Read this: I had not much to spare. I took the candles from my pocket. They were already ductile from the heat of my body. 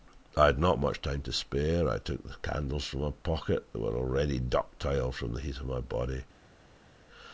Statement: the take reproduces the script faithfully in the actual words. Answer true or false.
false